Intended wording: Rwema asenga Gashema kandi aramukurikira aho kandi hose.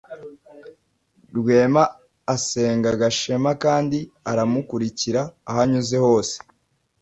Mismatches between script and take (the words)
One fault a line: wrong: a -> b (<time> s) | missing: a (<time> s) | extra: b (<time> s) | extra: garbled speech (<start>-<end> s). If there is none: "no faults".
wrong: kandi -> anyuze (5.6 s)